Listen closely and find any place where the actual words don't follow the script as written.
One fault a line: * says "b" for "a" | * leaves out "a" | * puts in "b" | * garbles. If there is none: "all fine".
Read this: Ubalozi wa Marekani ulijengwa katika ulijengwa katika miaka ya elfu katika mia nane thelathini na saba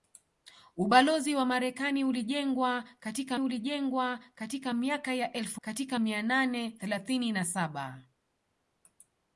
all fine